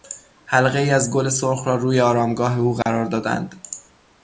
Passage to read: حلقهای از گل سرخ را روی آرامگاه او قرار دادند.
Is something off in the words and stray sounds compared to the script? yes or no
yes